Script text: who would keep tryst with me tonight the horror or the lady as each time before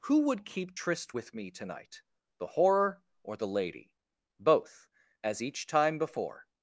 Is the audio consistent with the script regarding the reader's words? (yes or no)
no